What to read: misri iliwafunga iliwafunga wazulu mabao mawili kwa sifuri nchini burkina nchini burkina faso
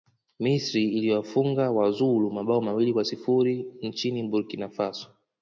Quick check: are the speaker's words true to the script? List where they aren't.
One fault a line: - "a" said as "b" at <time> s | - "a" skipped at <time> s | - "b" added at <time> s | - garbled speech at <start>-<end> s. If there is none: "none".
- "iliwafunga" skipped at 1.7 s
- "nchini burkina" skipped at 4.7 s